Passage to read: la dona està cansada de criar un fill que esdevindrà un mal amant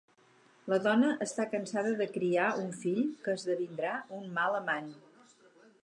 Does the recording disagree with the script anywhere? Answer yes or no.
no